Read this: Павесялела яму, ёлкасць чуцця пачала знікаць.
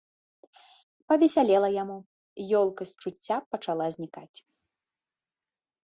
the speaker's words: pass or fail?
pass